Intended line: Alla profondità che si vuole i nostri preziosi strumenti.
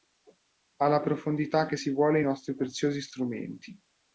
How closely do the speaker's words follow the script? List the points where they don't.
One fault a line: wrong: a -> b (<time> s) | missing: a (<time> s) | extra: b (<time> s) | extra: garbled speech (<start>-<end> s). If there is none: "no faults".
no faults